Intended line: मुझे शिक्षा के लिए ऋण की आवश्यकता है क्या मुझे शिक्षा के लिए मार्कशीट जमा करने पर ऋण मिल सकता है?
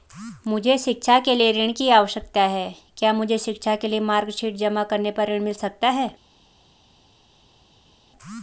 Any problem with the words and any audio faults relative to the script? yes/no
no